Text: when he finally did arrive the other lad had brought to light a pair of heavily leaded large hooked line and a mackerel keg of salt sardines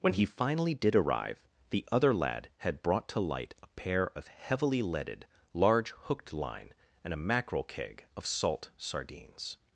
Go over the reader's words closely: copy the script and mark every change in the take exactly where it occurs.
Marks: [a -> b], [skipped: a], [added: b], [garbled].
when he finally did arrive the other lad had brought to light a pair of heavily leaded large hooked line and a mackerel keg of salt sardines